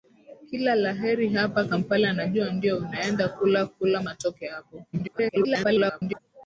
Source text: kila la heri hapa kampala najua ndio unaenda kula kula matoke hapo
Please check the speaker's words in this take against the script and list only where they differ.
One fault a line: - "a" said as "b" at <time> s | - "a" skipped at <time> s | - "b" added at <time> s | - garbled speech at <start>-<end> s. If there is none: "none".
- garbled speech at 4.9-6.2 s